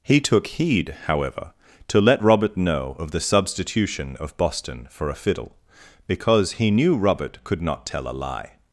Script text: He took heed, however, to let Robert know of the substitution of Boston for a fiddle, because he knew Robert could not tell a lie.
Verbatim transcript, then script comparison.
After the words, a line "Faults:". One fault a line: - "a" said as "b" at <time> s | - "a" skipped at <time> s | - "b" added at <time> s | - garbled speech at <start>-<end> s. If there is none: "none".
He took heed, however, to let Robert know of the substitution of Boston for a fiddle, because he knew Robert could not tell a lie.
Faults:
none